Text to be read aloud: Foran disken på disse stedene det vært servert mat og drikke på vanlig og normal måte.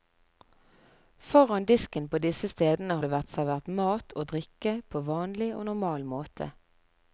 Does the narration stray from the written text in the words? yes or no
no